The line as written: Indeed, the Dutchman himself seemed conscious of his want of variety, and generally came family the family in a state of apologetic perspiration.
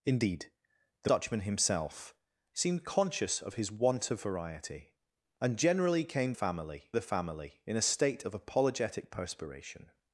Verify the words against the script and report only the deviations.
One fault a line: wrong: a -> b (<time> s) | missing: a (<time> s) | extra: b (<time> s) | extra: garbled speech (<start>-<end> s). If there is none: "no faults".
no faults